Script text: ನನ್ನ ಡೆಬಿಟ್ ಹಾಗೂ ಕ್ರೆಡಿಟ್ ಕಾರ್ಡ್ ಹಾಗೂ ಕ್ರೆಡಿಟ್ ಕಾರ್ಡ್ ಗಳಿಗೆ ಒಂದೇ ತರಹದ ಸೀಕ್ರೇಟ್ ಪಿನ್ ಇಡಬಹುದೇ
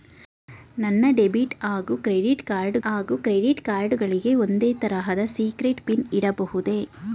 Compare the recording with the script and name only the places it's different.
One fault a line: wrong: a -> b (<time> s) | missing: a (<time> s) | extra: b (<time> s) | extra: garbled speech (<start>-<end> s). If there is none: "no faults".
no faults